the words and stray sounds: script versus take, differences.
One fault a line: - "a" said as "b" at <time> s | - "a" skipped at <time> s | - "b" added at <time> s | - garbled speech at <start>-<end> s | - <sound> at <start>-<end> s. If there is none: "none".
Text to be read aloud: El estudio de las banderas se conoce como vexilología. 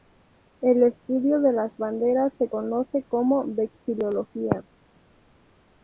none